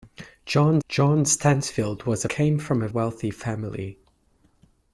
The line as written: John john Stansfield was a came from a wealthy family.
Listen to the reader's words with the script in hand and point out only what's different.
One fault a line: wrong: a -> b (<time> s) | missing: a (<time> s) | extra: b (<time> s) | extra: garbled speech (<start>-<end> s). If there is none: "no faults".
no faults